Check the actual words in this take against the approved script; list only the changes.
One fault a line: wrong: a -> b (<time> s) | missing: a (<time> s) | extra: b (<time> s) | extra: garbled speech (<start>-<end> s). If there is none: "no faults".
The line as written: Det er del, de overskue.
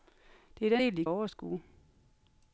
no faults